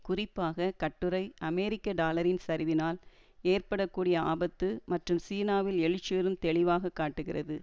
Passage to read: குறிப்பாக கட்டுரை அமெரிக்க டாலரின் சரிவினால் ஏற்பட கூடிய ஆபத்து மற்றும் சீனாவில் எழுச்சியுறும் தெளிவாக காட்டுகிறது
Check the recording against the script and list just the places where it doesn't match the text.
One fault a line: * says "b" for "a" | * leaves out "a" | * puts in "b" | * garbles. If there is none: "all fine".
all fine